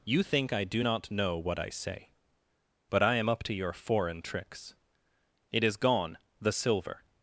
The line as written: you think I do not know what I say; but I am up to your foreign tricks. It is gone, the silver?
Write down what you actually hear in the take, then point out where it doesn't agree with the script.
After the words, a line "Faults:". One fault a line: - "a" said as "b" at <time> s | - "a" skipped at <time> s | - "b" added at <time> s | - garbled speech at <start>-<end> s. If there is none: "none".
you think I do not know what I say; but I am up to your foreign tricks. It is gone, the silver?
Faults:
none